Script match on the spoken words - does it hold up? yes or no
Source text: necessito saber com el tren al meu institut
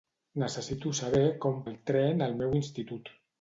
yes